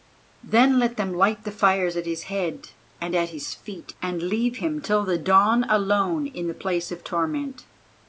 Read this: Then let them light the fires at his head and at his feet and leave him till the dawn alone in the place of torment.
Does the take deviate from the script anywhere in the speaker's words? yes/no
no